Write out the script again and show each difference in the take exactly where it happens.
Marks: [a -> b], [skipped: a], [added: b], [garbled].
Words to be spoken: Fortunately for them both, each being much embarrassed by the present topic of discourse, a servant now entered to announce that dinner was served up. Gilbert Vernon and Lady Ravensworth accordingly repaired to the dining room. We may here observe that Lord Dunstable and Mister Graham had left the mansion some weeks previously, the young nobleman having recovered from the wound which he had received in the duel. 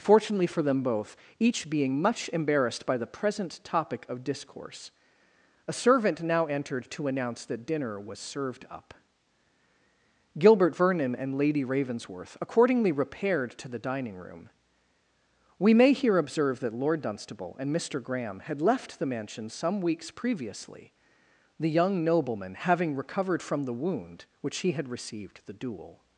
Fortunately for them both, each being much embarrassed by the present topic of discourse, a servant now entered to announce that dinner was served up. Gilbert Vernon and Lady Ravensworth accordingly repaired to the dining room. We may here observe that Lord Dunstable and Mister Graham had left the mansion some weeks previously, the young nobleman having recovered from the wound which he had received [skipped: in] the duel.